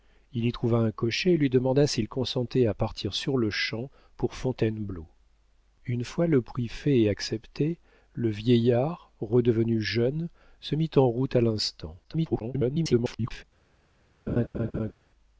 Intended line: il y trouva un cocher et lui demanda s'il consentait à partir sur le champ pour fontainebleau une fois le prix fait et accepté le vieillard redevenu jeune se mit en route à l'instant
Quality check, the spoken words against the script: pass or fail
fail